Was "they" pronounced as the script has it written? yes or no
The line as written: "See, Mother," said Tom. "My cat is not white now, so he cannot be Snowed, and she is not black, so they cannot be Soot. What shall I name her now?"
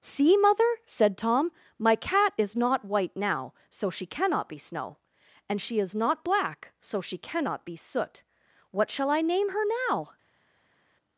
no